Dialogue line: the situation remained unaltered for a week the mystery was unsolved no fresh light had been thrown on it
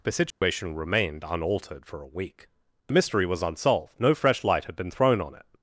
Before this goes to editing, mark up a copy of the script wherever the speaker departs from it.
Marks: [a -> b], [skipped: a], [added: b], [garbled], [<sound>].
the situation [dropout] remained unaltered for a week the mystery was unsolved no fresh light had been thrown on it